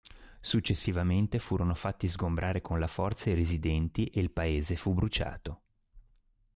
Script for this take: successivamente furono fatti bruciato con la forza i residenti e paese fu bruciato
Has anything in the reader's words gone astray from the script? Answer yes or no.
yes